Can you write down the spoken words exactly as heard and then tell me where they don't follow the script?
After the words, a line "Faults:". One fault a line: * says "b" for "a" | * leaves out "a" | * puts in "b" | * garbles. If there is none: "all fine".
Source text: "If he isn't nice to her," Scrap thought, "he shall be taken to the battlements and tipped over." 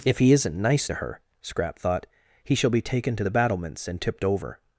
"If he isn't nice to her," Scrap thought, "he shall be taken to the battlements and tipped over."
Faults:
all fine